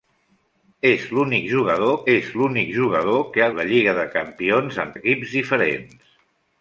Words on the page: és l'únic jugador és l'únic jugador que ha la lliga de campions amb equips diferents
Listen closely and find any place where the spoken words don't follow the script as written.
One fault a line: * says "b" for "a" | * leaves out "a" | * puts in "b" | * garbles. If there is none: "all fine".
all fine